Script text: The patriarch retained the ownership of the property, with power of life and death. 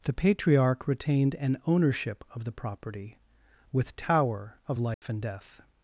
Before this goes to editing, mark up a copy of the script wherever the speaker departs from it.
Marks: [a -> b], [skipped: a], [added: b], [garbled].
The patriarch retained [the -> an] ownership of the property, with [power -> tower] of life and death.